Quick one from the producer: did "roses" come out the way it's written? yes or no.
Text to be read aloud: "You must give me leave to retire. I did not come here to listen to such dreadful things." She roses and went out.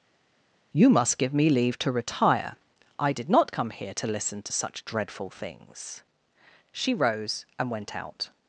no